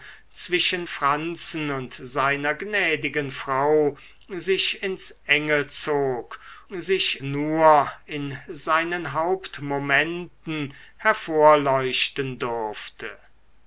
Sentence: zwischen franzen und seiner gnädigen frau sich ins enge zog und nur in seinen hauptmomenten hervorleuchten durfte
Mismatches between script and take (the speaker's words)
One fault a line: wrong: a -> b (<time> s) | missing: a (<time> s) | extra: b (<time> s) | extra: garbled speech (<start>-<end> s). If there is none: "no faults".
wrong: und -> sich (6.7 s)